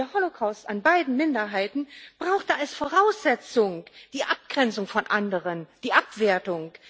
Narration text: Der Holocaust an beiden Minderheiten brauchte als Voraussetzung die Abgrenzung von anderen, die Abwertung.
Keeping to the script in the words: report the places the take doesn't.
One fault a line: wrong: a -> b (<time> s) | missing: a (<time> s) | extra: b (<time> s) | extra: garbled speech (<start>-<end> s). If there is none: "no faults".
no faults